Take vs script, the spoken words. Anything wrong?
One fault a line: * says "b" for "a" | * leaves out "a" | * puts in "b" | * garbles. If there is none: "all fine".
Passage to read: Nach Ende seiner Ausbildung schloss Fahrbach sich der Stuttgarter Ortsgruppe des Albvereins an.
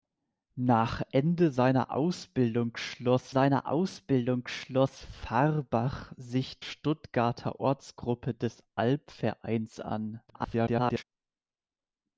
* puts in "seiner Ausbildung schloss"
* leaves out "der"
* garbles